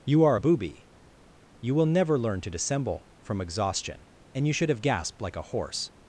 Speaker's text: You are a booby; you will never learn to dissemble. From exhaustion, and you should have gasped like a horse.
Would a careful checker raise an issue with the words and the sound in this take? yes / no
no